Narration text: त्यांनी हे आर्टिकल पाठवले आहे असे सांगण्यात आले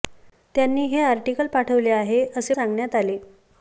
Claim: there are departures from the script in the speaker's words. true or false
false